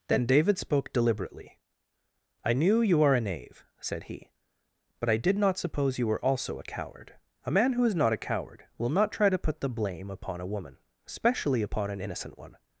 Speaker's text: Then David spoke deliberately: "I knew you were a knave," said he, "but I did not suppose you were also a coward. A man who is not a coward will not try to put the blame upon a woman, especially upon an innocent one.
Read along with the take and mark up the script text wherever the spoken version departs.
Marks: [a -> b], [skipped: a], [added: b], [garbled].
Then David spoke deliberately: "I knew you [were -> are] a knave," said he, "but I did not suppose you were also a coward. A man who is not a coward will not try to put the blame upon a woman, especially upon an innocent one.